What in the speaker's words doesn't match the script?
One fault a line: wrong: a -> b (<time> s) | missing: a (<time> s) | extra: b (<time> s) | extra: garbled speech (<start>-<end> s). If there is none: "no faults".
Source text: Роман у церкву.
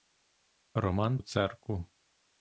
no faults